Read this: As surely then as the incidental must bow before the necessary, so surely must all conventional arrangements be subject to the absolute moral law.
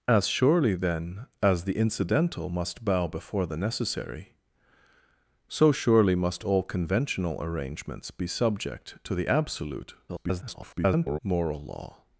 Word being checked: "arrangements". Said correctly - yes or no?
yes